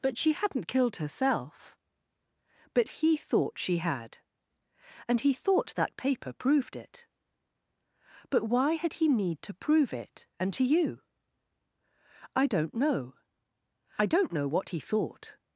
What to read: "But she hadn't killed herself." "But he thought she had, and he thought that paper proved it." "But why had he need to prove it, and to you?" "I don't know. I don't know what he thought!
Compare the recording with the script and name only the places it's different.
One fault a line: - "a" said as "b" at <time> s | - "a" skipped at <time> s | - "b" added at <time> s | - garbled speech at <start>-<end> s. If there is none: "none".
none